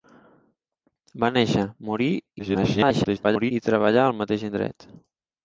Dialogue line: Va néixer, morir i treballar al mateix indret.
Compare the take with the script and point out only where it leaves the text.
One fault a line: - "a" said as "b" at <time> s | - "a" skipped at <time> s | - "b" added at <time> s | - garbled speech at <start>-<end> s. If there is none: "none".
- garbled speech at 2.4-3.5 s